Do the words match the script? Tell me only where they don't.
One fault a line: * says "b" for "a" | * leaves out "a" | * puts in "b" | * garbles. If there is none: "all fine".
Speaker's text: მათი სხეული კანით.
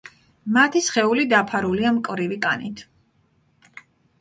* puts in "დაფარულია მკვრივი"